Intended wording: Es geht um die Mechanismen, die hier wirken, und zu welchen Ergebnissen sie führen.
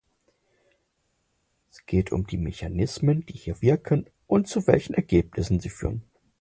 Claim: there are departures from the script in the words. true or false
false